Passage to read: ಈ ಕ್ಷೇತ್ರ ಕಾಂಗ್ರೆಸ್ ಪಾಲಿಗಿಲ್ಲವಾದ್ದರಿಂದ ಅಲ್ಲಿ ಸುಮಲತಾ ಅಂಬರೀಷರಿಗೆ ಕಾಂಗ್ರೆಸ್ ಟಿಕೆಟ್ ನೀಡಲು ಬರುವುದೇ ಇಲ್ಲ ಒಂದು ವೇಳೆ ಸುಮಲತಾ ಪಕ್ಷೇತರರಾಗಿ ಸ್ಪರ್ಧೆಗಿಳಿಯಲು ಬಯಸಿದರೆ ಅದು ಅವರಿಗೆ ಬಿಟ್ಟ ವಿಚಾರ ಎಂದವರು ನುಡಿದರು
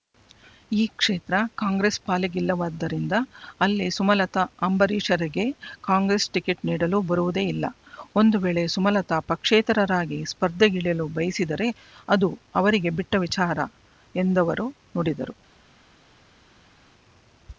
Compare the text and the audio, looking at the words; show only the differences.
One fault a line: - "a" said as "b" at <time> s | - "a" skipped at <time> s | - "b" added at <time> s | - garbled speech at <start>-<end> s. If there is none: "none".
none